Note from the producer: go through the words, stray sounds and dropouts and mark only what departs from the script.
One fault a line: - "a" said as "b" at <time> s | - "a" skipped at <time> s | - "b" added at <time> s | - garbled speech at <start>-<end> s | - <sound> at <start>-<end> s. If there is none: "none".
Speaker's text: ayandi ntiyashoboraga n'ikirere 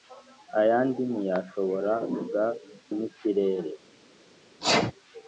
- sneeze at 4.6-4.9 s